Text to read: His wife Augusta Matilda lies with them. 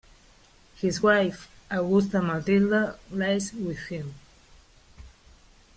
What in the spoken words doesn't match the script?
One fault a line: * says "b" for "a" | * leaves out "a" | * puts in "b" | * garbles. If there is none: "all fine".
* says "him" for "them"